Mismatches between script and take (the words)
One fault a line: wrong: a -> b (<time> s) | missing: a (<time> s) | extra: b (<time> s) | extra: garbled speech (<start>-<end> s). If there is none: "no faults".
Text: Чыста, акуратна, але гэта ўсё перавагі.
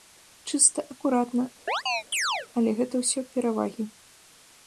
no faults